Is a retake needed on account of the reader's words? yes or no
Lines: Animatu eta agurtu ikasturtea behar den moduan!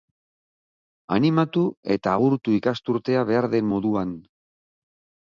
no